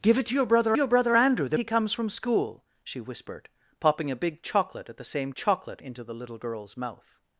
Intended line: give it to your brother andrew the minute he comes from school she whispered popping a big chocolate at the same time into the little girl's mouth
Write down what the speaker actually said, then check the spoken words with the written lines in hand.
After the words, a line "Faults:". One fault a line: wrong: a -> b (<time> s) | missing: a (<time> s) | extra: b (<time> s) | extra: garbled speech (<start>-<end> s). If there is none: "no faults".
give it to your brother your brother andrew the he comes from school she whispered popping a big chocolate at the same chocolate into the little girl's mouth
Faults:
extra: your brother (0.8 s)
missing: minute (1.6 s)
wrong: time -> chocolate (5.4 s)